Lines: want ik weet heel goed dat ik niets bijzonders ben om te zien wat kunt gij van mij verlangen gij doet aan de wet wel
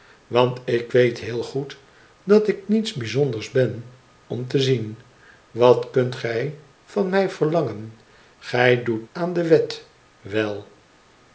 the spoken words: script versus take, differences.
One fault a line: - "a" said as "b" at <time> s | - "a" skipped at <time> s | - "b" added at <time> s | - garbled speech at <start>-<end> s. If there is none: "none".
none